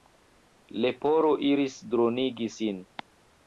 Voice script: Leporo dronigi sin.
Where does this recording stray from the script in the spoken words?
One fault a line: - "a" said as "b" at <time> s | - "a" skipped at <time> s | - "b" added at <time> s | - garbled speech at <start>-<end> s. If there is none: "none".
- "iris" added at 1.5 s